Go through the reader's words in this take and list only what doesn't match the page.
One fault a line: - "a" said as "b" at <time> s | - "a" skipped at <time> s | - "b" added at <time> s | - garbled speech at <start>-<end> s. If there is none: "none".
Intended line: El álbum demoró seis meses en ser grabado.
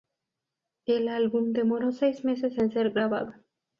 none